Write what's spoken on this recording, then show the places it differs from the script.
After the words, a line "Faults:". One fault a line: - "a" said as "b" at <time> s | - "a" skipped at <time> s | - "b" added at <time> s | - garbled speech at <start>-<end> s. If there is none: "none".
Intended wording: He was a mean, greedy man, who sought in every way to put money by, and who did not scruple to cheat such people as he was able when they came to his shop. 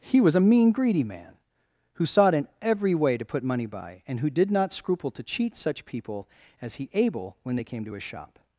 He was a mean, greedy man, who sought in every way to put money by, and who did not scruple to cheat such people as he able when they came to his shop.
Faults:
- "was" skipped at 6.9 s